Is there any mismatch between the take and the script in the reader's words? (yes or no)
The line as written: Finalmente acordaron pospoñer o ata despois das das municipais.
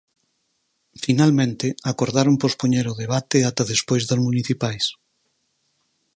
yes